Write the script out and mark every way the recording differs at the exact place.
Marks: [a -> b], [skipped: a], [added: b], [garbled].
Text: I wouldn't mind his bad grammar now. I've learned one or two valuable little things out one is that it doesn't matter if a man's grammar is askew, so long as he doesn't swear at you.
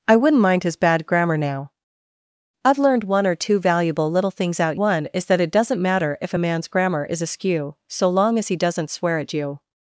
I wouldn't mind his bad grammar now. I've learned one or two valuable little things out one is that it doesn't matter if a man's grammar is askew, so long as he doesn't swear at you.